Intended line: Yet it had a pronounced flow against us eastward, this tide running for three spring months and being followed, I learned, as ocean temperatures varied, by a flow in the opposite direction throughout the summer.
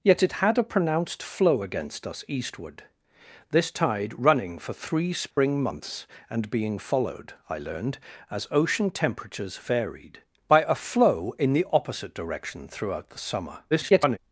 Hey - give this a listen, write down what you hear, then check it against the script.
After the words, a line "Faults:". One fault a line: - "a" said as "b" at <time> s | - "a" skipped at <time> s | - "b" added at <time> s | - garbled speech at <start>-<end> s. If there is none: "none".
Yet it had a pronounced flow against us eastward, this tide running for three spring months and being followed, I learned, as ocean temperatures varied, by a flow in the opposite direction throughout the summer. [garbled]
Faults:
- garbled speech at 13.7-14.2 s